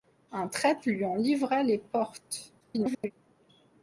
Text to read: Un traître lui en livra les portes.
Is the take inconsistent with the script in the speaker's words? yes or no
yes